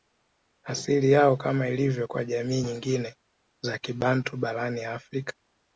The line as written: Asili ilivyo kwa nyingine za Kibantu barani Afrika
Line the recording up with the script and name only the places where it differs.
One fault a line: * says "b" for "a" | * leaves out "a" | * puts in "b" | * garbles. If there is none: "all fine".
* puts in "yao Kama"
* puts in "jamii"